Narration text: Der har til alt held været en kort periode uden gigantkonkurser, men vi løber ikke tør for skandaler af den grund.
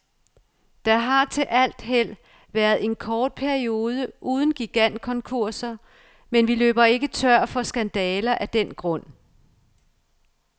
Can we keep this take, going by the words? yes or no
yes